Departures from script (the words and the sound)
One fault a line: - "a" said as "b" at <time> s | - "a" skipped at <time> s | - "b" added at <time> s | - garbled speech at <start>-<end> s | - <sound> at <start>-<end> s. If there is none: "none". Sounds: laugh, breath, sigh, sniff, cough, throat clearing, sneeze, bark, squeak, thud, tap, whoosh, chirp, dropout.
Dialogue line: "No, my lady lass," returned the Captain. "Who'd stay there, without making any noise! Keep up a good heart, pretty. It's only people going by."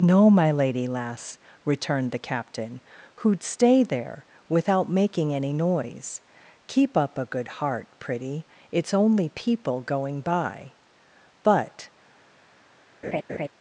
- "But" added at 11.4 s
- laugh at 13.0-13.5 s